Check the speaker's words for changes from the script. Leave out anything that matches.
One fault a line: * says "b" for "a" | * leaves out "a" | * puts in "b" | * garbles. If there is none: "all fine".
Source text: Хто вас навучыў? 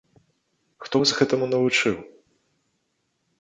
* puts in "гэтаму"